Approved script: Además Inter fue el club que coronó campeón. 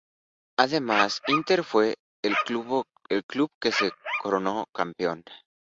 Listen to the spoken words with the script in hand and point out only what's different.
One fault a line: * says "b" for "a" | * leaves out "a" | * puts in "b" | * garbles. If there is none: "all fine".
* puts in "se"